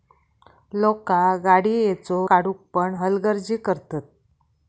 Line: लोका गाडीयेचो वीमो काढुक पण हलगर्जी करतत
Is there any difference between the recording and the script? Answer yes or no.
yes